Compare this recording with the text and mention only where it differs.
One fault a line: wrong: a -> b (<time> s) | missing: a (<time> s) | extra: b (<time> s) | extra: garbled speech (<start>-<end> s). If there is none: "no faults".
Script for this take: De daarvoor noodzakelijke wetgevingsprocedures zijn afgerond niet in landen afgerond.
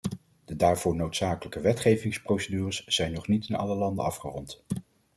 wrong: afgerond -> nog (3.1 s)
extra: alle (3.5 s)